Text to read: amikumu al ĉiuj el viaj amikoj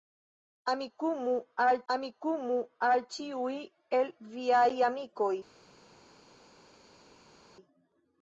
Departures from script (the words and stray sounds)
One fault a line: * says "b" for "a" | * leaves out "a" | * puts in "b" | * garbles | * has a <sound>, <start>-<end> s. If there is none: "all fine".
* puts in "amikumu al"